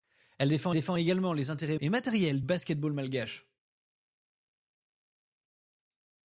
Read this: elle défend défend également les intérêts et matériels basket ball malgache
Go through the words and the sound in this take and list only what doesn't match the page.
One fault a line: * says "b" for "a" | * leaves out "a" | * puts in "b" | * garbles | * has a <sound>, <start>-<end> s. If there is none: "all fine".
all fine